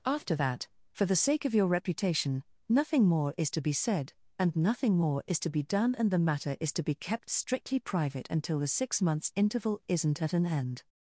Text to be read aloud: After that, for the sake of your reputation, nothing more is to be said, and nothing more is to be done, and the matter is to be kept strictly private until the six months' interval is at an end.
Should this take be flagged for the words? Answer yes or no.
yes